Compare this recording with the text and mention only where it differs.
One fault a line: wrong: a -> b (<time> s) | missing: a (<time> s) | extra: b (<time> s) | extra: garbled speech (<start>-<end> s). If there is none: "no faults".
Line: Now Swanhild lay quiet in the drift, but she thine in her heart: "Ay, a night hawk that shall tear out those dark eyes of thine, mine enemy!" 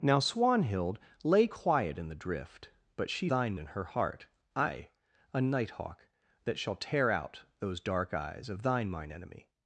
no faults